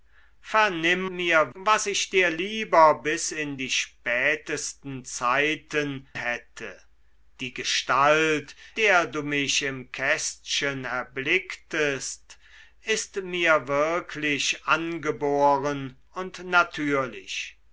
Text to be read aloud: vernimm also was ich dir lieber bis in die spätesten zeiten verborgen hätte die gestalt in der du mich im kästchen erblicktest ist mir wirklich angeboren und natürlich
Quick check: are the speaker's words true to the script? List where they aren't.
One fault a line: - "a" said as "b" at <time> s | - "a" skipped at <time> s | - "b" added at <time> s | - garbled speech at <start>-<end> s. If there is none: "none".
- "also" said as "mir" at 1.1 s
- "verborgen" skipped at 6.1 s
- "in" skipped at 8.6 s